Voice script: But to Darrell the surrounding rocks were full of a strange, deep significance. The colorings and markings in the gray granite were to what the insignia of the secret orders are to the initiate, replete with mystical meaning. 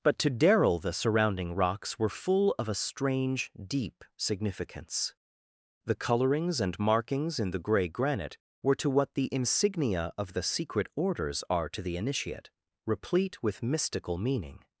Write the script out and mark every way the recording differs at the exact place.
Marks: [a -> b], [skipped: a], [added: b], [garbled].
But to Darrell the surrounding rocks were full of a strange, deep significance. The colorings and markings in the gray granite were to what the insignia of the secret orders are to the initiate, replete with mystical meaning.